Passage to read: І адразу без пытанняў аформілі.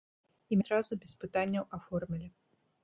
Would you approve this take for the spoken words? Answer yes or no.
yes